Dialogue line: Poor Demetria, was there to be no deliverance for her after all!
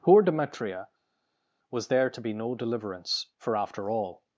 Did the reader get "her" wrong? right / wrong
wrong